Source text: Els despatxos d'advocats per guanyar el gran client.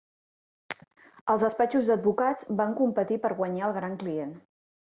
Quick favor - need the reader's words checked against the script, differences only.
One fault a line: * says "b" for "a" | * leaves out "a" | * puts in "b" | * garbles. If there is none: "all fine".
* puts in "van competir"